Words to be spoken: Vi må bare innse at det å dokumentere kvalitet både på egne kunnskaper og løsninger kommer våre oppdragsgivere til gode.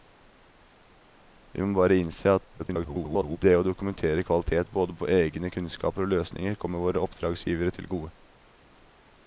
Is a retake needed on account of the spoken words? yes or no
yes